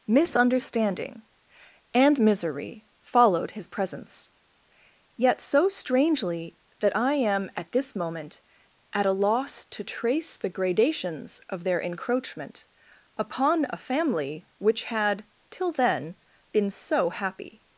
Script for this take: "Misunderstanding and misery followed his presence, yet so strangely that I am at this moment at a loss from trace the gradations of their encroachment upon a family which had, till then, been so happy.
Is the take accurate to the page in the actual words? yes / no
no